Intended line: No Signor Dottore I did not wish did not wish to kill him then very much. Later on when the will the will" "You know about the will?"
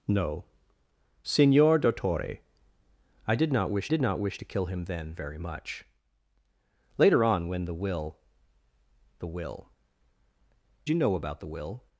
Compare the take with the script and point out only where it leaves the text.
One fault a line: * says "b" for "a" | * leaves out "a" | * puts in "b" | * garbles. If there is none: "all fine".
all fine